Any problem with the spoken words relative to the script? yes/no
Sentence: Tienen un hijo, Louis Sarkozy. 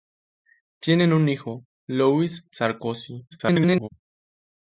yes